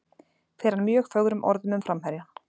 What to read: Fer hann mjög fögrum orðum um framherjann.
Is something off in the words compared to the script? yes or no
no